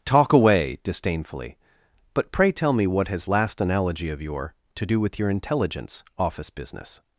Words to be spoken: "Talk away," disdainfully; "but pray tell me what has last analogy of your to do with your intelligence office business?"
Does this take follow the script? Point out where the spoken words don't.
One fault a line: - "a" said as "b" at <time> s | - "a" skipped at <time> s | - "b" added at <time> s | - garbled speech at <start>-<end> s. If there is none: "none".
none